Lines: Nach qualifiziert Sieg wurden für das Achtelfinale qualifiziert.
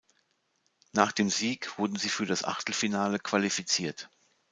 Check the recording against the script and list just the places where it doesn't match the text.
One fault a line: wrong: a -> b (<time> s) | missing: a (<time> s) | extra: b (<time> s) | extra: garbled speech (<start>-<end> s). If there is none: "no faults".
wrong: qualifiziert -> dem (1.1 s)
extra: sie (1.9 s)